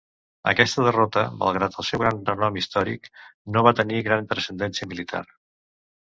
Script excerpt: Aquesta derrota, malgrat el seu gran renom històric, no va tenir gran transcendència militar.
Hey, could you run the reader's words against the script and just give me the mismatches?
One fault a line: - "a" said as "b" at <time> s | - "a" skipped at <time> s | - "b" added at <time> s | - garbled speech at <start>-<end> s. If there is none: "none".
none